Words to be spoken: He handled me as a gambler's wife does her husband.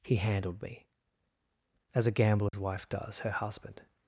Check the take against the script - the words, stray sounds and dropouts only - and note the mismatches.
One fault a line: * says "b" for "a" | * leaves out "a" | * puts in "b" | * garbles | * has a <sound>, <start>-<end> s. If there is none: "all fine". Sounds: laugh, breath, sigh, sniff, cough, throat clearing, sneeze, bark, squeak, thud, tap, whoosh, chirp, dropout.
* has a dropout, 2.5-2.5 s